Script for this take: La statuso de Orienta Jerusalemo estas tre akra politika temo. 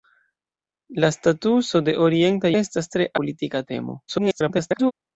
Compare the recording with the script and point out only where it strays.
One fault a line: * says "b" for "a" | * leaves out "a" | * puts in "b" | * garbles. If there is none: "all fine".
* leaves out "Jerusalemo"
* leaves out "akra"
* garbles